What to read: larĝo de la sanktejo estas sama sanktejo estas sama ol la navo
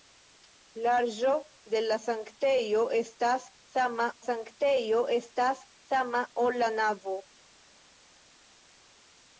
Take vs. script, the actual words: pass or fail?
pass